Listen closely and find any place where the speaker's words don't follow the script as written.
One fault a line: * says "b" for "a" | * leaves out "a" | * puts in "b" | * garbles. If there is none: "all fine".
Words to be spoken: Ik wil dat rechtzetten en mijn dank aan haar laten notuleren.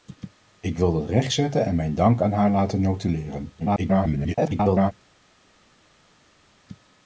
* garbles